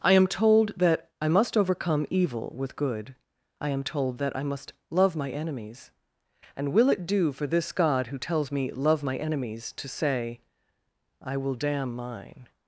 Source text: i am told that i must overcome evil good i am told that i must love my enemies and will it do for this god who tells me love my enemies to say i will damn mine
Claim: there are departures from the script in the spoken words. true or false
true